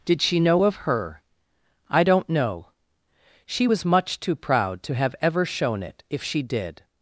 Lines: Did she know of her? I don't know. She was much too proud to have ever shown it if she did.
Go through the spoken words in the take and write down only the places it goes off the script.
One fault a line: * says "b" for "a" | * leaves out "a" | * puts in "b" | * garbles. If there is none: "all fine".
all fine